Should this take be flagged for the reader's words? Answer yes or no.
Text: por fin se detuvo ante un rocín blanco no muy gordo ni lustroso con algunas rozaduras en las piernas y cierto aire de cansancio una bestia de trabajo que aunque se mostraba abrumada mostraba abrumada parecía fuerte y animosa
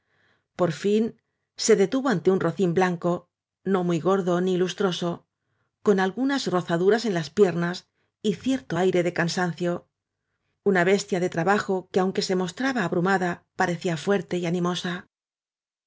yes